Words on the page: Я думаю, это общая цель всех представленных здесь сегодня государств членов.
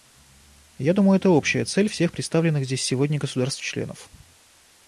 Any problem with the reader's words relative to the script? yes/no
no